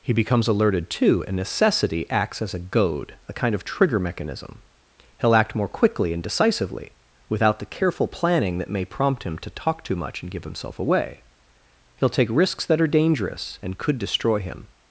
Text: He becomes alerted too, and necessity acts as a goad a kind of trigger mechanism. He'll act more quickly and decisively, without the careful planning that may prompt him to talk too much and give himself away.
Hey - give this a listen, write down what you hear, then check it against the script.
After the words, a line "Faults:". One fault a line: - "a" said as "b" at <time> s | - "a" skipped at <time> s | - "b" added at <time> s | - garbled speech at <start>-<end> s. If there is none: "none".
He becomes alerted too, and necessity acts as a goad a kind of trigger mechanism. He'll act more quickly and decisively, without the careful planning that may prompt him to talk too much and give himself away. He'll take risks that are dangerous and could destroy him
Faults:
- "He'll take risks that are dangerous and could destroy him" added at 12.0 s